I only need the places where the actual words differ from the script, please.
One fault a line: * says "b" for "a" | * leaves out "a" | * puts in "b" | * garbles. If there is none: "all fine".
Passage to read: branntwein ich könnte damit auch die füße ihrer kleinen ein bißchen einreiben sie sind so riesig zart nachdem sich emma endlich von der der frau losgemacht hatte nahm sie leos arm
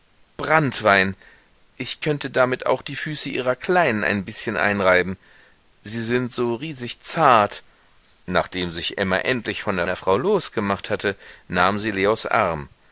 all fine